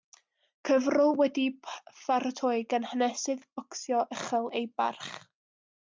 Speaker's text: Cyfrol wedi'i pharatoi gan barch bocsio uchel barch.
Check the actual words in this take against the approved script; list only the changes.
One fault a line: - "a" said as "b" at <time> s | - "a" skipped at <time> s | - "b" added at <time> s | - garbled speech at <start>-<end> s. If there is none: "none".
- "barch" said as "hanesydd" at 3.0 s
- "ei" added at 4.6 s